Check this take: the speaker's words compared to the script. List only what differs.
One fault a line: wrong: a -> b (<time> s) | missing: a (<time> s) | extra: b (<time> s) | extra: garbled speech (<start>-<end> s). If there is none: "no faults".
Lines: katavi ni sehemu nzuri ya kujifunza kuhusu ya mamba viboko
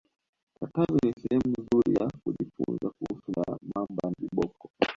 no faults